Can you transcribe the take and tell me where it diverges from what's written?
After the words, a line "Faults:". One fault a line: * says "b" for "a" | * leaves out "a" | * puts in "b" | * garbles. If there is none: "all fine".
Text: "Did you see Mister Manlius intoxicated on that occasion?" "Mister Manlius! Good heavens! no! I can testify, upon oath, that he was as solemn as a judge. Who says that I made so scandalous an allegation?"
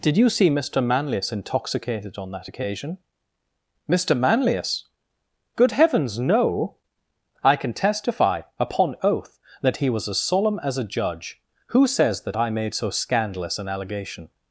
"Did you see Mister Manlius intoxicated on that occasion?" "Mister Manlius! Good heavens! no! I can testify, upon oath, that he was as solemn as a judge. Who says that I made so scandalous an allegation?"
Faults:
all fine